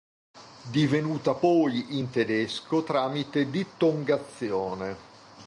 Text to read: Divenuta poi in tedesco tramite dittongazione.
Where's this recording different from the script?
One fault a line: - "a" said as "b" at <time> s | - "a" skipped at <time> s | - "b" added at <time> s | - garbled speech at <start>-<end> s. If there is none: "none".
none